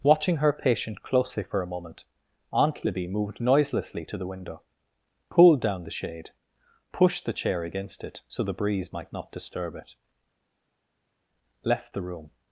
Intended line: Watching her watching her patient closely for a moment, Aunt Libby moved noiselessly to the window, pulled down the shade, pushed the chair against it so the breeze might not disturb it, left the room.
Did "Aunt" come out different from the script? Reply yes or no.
no